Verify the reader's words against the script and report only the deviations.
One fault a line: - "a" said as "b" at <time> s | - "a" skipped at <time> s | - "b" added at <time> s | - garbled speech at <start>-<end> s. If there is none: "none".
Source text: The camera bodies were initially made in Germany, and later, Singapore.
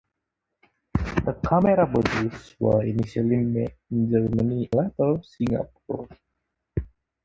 - "and" skipped at 4.7 s